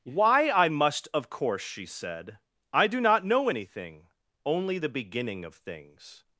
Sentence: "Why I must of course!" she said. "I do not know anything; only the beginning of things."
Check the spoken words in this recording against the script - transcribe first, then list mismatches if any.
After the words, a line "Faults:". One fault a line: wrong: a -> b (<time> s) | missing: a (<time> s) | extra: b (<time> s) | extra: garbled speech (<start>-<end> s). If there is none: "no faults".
"Why I must of course!" she said. "I do not know anything; only the beginning of things."
Faults:
no faults